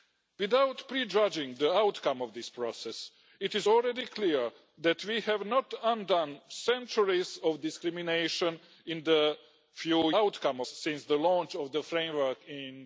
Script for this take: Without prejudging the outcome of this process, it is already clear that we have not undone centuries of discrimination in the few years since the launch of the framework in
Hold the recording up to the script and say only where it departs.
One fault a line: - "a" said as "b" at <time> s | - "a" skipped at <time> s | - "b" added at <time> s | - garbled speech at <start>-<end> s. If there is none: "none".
- "years" said as "outcome" at 10.1 s